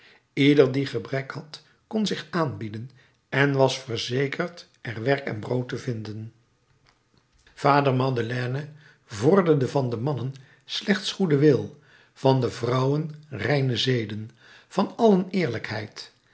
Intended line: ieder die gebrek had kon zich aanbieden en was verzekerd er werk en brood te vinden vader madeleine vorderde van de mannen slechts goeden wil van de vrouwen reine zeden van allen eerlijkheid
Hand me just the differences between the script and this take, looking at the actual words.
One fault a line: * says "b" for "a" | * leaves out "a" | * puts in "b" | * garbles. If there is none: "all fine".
all fine